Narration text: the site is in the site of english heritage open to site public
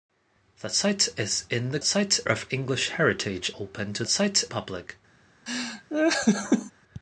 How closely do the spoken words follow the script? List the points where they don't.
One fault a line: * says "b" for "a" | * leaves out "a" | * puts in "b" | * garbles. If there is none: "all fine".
all fine